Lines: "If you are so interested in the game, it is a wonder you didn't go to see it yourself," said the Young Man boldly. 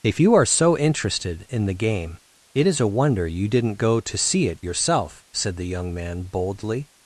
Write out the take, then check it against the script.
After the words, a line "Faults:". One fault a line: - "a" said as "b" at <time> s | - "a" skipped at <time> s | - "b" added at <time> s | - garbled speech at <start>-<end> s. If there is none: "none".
"If you are so interested in the game, it is a wonder you didn't go to see it yourself," said the Young Man boldly.
Faults:
none